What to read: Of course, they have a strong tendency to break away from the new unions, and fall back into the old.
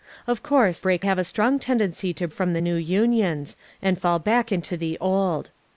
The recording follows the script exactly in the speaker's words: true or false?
false